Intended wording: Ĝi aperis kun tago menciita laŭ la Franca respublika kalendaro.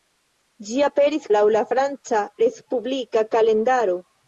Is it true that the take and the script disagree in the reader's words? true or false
true